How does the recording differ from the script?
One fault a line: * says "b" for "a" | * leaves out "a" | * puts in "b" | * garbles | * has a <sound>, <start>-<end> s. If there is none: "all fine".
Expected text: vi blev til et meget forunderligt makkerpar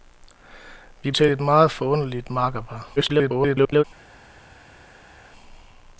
* leaves out "blev"
* garbles